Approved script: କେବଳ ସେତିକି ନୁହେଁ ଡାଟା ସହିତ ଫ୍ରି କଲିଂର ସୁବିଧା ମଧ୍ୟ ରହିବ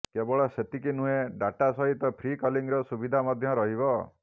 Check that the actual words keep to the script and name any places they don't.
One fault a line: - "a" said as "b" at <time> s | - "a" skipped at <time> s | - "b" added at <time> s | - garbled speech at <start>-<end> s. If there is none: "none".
none